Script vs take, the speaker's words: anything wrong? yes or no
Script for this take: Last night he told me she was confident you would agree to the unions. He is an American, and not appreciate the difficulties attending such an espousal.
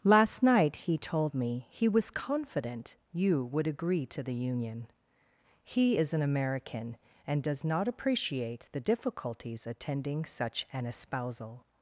yes